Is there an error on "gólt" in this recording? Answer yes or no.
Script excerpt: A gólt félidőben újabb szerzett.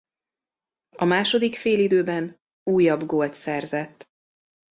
yes